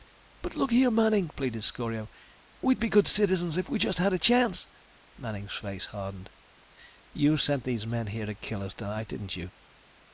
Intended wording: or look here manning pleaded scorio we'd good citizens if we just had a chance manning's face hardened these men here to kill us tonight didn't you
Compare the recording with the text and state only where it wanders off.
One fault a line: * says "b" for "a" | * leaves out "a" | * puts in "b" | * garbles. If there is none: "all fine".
* says "but" for "or"
* puts in "be"
* puts in "you sent"